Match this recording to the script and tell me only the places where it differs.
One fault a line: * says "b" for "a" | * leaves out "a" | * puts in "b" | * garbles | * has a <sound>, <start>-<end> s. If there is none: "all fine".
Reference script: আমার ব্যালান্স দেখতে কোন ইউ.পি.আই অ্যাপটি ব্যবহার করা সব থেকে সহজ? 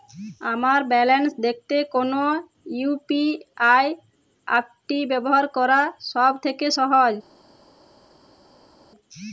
all fine